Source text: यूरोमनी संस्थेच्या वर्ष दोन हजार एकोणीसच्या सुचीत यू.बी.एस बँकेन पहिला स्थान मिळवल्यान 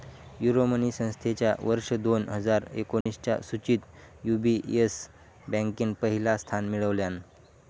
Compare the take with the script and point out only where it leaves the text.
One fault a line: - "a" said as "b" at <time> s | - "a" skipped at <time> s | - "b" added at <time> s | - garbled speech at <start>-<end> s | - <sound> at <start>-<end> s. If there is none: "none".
- dropout at 3.0-3.1 s